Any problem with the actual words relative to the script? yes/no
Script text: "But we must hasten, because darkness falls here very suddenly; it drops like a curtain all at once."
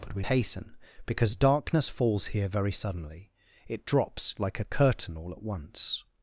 yes